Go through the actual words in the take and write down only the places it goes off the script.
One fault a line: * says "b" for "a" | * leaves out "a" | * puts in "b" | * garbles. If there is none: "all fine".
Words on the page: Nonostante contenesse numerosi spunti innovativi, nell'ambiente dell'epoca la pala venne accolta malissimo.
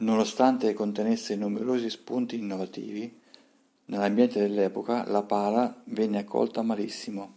all fine